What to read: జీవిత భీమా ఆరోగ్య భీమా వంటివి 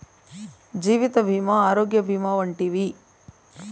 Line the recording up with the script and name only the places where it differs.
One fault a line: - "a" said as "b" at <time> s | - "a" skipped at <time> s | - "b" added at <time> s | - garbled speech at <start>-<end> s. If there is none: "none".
none